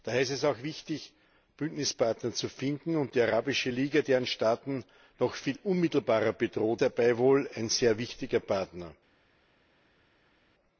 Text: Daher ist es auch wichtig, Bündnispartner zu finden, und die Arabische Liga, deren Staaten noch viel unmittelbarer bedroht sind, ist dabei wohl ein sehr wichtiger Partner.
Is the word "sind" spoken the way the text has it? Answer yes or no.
no